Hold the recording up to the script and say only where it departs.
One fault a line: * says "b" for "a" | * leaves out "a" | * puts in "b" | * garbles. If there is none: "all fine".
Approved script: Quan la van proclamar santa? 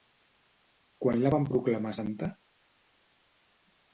all fine